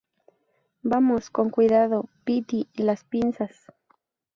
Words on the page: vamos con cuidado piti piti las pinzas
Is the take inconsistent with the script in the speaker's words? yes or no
yes